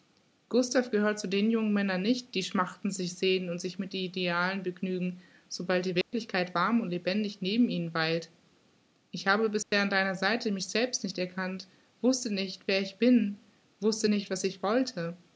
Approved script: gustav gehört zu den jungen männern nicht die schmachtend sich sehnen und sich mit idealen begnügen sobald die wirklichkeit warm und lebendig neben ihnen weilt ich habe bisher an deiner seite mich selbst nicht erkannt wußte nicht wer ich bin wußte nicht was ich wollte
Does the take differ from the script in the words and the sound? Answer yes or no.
yes